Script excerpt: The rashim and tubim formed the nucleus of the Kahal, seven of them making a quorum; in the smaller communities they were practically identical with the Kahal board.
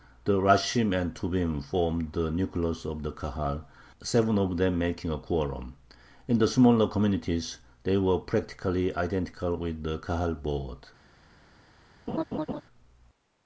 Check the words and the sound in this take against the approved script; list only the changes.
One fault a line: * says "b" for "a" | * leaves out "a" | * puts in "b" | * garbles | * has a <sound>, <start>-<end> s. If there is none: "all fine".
* has a laugh, 12.1-12.6 s